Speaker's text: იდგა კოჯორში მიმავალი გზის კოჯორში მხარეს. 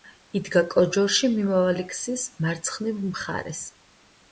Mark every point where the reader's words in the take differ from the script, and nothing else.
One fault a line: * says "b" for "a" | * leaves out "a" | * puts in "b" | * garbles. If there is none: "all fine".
* says "მარცხნივ" for "კოჯორში"